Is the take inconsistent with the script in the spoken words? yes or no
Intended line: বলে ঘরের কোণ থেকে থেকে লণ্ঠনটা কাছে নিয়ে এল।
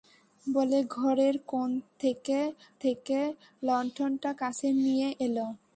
no